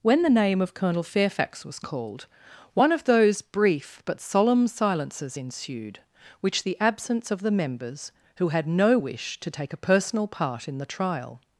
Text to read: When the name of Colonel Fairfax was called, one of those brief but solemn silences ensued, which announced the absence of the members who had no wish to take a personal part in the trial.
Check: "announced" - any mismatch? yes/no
yes